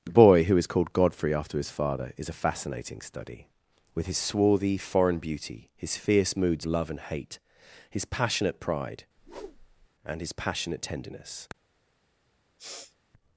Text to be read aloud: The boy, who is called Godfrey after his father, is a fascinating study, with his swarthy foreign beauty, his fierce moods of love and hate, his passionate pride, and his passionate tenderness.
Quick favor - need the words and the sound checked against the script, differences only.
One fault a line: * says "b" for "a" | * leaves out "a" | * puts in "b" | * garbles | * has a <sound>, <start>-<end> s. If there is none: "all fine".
* leaves out "of"
* has a whoosh, 9.2-9.9 s
* has a sniff, 12.6-13.0 s